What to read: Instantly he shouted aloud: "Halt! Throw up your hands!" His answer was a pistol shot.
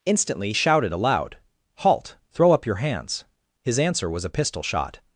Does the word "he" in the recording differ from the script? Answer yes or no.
yes